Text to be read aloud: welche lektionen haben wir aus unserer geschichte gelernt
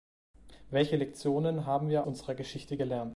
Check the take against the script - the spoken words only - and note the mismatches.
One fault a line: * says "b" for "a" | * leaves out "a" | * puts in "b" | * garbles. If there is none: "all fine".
* leaves out "aus"